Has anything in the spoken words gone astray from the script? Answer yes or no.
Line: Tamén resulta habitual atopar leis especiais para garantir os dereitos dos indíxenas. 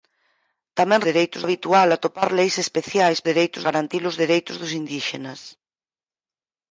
yes